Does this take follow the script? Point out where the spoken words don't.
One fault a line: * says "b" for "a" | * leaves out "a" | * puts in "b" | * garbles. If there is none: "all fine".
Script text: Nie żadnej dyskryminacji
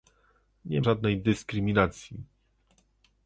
all fine